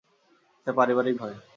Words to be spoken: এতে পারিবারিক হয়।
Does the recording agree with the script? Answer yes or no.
yes